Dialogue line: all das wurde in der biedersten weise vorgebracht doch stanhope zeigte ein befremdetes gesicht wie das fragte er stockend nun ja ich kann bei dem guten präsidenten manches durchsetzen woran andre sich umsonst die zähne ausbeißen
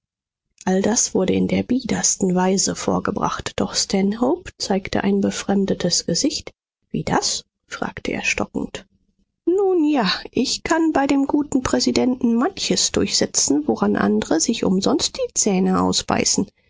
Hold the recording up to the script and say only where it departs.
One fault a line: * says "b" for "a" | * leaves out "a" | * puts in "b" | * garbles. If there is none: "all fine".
all fine